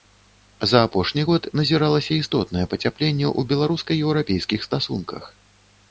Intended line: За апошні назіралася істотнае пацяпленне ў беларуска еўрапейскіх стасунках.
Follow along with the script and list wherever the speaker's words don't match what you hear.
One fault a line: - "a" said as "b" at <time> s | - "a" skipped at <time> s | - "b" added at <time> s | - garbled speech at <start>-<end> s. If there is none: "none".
- "год" added at 1.3 s